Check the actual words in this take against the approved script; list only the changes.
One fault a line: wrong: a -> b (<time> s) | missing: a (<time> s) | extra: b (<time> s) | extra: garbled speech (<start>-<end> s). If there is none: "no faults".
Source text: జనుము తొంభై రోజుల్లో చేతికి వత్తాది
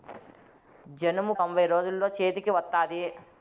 no faults